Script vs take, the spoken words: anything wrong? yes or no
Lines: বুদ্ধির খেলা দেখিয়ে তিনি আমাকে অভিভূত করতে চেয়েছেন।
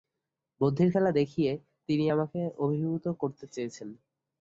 no